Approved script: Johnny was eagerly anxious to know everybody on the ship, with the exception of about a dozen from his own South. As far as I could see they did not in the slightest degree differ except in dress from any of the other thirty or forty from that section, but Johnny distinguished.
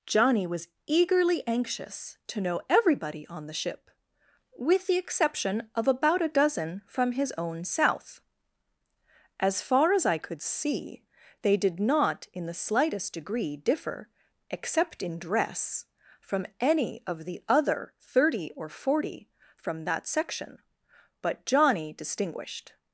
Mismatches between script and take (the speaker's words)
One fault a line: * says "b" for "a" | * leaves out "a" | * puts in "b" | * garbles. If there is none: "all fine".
all fine